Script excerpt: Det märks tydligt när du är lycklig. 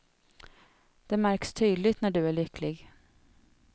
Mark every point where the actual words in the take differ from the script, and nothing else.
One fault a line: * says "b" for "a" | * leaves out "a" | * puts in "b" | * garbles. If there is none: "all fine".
all fine